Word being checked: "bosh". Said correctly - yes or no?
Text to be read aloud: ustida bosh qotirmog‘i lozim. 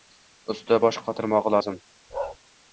yes